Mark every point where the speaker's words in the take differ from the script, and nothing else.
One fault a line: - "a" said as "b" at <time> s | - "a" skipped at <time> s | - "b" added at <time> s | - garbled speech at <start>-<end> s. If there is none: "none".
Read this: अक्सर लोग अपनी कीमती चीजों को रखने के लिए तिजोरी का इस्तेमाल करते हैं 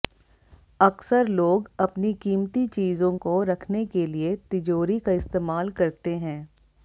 none